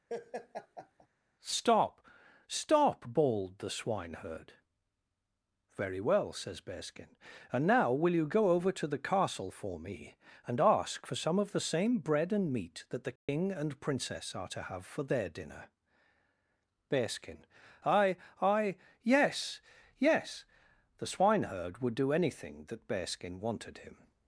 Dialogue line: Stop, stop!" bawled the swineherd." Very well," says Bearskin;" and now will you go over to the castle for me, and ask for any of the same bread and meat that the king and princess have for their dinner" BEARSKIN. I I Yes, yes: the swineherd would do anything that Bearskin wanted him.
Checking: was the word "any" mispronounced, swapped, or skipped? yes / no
yes